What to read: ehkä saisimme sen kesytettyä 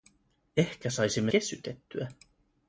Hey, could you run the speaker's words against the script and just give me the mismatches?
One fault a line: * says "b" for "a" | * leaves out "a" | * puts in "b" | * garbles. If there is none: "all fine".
* leaves out "sen"